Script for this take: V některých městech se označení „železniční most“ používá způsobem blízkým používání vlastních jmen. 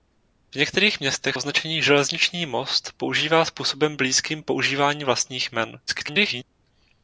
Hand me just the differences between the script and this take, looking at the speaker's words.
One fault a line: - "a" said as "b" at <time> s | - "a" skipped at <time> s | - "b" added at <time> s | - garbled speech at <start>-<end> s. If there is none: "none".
- "se" skipped at 1.4 s
- garbled speech at 5.9-6.4 s